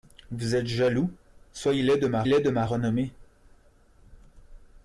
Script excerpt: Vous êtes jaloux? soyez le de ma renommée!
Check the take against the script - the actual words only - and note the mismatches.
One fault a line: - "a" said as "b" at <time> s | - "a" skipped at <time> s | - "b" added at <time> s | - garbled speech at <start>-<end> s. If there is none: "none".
- "le de ma" added at 2.3 s